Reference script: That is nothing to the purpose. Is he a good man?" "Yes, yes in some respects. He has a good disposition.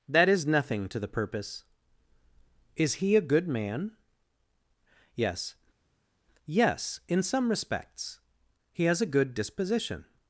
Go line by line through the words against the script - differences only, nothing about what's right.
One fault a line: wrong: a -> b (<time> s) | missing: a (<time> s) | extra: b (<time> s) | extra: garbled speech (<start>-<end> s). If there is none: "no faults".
no faults